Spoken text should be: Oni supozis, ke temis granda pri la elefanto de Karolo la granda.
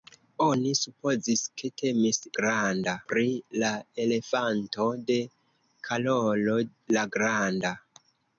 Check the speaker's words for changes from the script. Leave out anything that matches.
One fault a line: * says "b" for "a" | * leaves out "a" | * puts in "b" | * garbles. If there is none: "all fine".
all fine